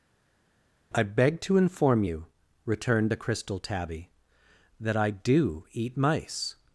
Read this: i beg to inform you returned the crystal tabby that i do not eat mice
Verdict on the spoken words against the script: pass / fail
fail